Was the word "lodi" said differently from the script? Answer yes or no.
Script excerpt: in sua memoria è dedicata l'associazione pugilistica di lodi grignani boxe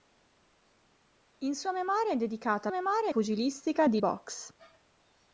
yes